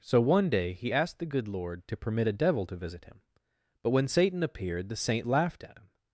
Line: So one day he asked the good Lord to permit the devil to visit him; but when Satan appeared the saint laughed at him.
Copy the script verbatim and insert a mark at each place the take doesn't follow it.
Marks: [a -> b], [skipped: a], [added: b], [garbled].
So one day he asked the good Lord to permit [the -> a] devil to visit him; but when Satan appeared the saint laughed at him.